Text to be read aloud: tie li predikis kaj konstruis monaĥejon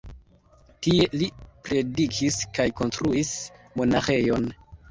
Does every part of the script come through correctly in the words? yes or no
yes